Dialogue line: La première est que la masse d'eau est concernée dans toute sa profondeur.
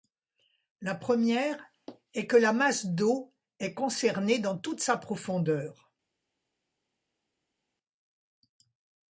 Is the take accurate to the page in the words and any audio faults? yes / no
yes